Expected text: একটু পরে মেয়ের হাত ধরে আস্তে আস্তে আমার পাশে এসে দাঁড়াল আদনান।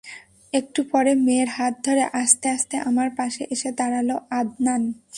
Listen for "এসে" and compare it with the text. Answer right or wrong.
right